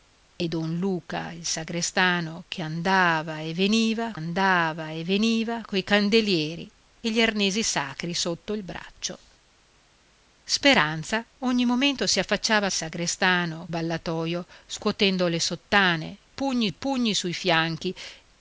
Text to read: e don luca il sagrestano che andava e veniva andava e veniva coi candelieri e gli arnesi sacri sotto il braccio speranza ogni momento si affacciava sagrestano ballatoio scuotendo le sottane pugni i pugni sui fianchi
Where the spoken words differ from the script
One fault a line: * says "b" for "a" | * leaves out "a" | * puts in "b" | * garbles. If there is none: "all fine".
all fine